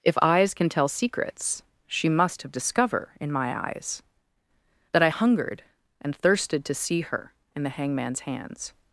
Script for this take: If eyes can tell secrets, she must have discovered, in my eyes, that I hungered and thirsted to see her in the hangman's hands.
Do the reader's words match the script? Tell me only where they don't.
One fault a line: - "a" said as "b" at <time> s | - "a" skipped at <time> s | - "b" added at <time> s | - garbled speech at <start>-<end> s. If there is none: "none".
- "discovered" said as "discover" at 2.5 s